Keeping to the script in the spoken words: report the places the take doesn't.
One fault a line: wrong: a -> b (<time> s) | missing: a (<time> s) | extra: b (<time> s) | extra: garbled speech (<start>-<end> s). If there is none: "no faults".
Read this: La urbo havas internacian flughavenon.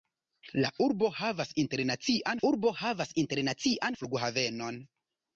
extra: urbo havas internacian (2.5 s)